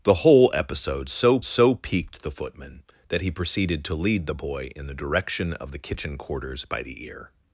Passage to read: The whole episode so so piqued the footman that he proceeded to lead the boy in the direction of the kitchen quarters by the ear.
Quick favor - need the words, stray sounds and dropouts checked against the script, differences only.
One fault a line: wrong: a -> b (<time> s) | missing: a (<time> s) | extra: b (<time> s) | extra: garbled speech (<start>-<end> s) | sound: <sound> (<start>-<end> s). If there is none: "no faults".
no faults